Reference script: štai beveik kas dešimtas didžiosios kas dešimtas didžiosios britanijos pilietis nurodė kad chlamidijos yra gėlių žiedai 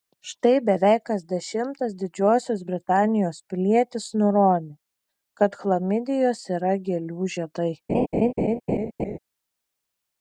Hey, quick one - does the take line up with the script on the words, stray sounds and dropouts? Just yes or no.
no